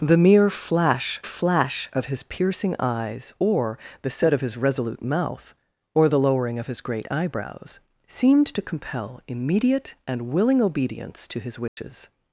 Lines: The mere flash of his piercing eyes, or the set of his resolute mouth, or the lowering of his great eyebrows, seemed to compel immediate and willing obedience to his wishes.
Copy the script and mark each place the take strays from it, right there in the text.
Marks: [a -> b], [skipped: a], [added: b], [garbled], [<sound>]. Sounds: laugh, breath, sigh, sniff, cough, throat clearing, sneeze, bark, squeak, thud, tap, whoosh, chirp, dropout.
The mere flash [added: flash] of his piercing eyes, or the set of his resolute mouth, or the lowering of his great eyebrows, seemed to compel immediate and willing obedience to his wishes. [dropout]